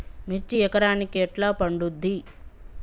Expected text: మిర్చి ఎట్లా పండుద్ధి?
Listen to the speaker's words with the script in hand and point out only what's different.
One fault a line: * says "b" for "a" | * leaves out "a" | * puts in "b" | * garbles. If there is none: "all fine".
* puts in "ఎకరానికి"